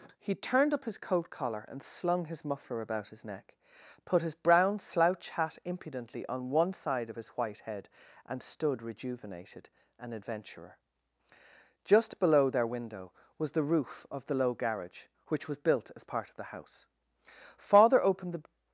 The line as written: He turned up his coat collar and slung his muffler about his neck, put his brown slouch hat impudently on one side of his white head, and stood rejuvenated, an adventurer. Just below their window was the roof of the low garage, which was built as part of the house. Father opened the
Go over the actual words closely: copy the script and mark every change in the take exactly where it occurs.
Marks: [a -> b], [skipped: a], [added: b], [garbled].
He turned up his coat collar and slung his muffler about his neck, put his brown slouch hat impudently on one side of his white head, and stood rejuvenated, an adventurer. Just below their window was the roof of the low garage, which was built as part of the house. Father opened the